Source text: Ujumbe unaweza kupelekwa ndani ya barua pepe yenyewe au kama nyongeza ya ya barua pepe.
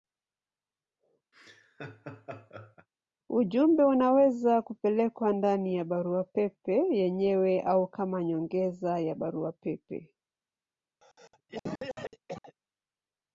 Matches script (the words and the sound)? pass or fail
fail